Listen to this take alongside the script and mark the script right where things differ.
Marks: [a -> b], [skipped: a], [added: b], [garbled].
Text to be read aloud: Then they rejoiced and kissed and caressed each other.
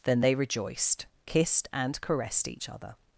Then they rejoiced [skipped: and] kissed and caressed each other.